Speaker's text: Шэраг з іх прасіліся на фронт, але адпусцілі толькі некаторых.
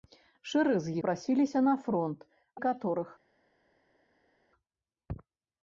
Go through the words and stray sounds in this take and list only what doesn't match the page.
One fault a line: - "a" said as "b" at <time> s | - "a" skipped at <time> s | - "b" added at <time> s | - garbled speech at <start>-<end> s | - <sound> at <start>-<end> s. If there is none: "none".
- "іх" skipped at 0.9 s
- "але адпусцілі толькі" skipped at 2.2 s